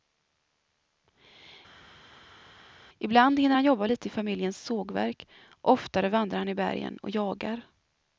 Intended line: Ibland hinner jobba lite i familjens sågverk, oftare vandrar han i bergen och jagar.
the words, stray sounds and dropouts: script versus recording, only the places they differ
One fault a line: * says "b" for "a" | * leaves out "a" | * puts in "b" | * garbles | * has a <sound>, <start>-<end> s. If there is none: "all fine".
* puts in "han"